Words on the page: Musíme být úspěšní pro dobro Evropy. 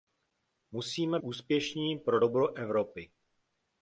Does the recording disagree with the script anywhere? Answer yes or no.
yes